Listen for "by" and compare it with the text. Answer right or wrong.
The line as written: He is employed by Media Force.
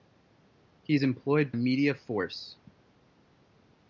wrong